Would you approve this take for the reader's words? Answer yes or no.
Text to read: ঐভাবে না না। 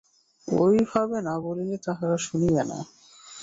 no